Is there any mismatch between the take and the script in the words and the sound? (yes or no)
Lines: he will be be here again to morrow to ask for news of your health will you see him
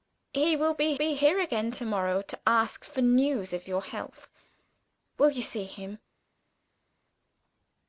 no